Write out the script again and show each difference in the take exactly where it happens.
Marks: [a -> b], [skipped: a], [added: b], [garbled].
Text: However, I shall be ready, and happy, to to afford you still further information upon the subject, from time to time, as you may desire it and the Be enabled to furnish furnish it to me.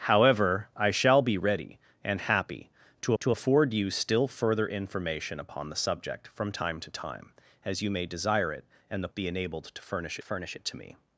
However, I shall be ready, and happy, to to afford you still further information upon the subject, from time to time, as you may desire it and the Be enabled to furnish furnish it to me.